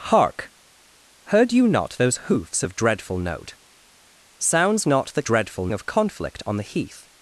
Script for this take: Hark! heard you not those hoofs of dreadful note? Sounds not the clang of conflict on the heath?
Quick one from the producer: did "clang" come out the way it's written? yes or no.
no